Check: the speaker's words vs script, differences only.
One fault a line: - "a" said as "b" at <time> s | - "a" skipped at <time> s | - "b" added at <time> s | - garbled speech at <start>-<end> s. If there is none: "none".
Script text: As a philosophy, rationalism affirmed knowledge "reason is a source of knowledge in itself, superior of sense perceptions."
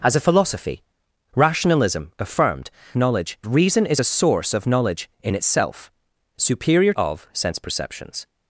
none